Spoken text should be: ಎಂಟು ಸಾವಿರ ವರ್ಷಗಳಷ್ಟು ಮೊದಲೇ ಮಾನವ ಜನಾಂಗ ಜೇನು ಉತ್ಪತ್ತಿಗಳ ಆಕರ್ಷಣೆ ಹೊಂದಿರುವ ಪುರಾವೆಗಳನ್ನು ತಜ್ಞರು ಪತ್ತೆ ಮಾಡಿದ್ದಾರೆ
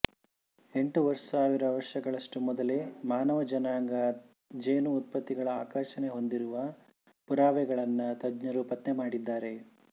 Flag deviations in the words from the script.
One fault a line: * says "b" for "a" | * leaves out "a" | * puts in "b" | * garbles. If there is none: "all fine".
all fine